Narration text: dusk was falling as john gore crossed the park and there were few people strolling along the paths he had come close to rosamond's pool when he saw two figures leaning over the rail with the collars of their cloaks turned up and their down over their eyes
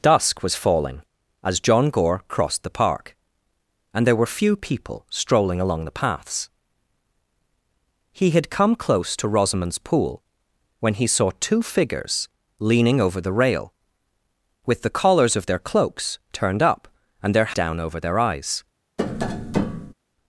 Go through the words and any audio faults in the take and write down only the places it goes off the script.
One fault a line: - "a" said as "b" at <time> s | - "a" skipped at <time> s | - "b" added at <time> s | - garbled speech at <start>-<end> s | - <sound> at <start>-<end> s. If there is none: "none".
- tap at 19.0-19.9 s